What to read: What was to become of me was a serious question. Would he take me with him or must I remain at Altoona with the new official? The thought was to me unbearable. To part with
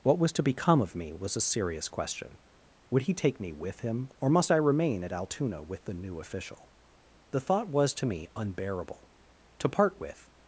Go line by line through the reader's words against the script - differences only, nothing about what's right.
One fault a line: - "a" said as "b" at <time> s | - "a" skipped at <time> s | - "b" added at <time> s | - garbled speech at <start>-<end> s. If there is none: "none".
none